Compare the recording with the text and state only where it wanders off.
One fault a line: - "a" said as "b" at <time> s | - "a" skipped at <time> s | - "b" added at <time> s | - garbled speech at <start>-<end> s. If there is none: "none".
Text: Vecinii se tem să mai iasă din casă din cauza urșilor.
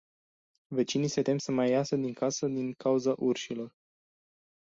none